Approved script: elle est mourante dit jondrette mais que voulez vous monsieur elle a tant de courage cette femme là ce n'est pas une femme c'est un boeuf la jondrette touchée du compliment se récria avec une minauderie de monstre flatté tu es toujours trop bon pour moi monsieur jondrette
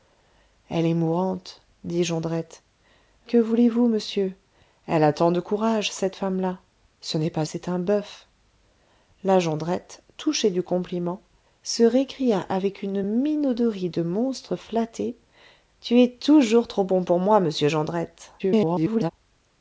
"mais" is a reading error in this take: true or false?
true